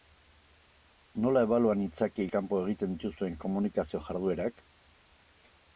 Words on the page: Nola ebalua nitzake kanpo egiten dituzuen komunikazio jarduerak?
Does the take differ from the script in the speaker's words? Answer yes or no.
no